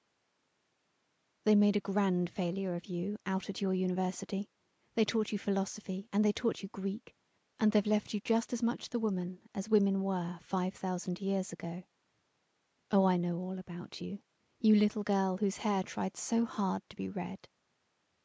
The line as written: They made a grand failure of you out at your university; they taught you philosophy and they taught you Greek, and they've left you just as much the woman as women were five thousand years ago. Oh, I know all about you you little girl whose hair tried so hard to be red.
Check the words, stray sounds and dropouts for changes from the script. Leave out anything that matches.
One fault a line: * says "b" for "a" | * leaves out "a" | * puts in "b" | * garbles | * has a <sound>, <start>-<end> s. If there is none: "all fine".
all fine